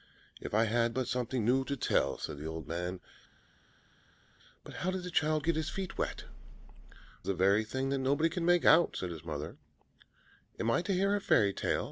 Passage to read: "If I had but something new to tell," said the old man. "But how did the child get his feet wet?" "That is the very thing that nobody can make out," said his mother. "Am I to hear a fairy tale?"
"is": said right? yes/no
no